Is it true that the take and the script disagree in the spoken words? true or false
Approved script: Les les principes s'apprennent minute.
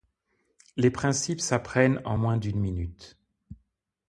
true